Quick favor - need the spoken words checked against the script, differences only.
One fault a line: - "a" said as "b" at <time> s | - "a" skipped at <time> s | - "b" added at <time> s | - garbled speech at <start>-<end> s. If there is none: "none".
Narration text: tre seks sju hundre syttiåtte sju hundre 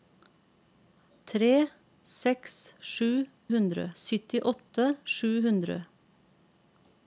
none